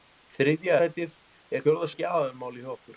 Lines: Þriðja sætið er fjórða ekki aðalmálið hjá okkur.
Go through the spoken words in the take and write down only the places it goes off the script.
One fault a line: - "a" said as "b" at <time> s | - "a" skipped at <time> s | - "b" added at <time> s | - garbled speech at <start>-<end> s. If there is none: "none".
none